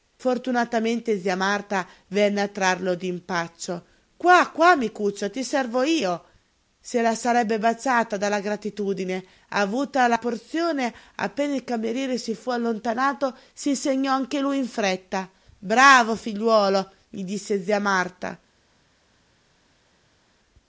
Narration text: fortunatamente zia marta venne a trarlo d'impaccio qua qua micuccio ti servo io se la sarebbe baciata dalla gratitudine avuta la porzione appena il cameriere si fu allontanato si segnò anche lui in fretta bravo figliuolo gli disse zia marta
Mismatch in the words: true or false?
false